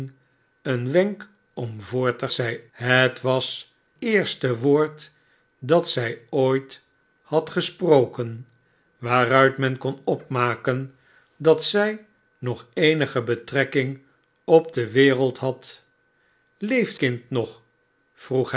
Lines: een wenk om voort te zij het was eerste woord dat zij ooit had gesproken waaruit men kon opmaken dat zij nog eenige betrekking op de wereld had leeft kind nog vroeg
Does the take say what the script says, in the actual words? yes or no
yes